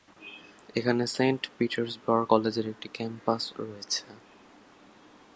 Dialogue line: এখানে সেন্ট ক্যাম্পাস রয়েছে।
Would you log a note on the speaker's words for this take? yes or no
yes